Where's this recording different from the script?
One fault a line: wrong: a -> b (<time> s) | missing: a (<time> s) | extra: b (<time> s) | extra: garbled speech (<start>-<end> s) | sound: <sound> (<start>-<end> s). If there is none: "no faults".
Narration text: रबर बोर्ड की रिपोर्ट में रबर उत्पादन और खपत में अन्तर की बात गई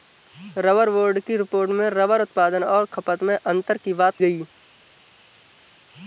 no faults